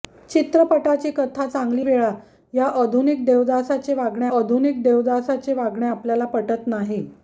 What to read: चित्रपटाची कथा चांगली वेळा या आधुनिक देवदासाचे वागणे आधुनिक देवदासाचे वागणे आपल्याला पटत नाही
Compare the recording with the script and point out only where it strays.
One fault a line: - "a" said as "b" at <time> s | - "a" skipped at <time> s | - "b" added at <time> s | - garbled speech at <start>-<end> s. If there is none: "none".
none